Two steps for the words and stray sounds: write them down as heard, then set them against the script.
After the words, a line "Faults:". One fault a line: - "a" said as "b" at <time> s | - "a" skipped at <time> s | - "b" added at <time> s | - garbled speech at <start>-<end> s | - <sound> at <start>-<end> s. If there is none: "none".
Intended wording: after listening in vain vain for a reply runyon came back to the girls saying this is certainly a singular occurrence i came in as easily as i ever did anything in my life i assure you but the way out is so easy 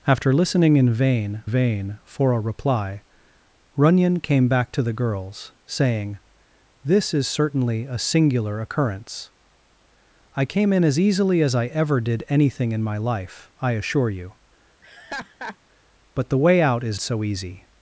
after listening in vain vain for a reply runyon came back to the girls saying this is certainly a singular occurrence i came in as easily as i ever did anything in my life i assure you but the way out is so easy
Faults:
- laugh at 14.8-15.6 s